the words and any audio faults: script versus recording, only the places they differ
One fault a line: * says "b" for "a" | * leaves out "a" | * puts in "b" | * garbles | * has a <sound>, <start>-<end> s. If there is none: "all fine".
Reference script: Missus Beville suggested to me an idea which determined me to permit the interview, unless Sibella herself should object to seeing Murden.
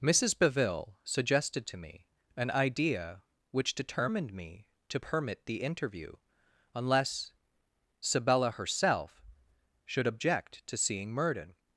all fine